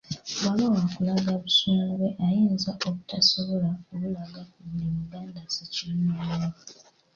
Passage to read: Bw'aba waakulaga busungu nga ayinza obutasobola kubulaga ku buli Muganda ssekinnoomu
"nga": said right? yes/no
no